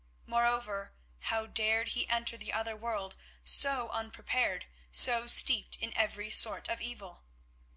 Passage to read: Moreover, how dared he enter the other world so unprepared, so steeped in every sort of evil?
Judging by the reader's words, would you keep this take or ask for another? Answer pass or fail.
pass